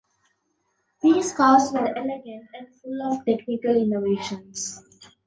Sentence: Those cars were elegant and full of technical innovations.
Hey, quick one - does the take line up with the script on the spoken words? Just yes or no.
no